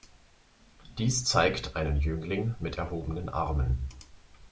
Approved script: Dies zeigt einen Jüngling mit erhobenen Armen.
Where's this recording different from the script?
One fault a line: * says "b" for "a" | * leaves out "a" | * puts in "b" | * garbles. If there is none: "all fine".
all fine